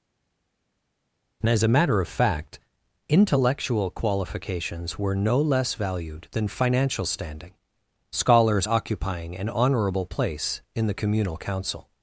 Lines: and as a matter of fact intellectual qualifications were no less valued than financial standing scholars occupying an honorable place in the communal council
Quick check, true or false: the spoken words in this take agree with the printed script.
true